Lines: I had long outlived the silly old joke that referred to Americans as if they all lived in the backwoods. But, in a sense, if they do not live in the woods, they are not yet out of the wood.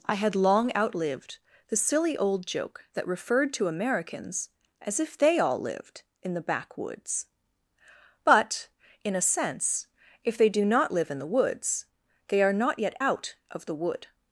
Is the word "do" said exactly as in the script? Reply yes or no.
yes